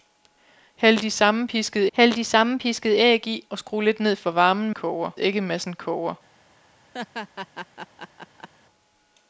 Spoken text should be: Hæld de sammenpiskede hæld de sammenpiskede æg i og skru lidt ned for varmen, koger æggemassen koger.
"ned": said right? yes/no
yes